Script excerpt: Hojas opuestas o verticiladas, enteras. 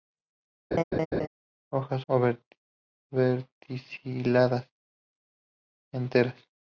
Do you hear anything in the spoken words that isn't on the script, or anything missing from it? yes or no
yes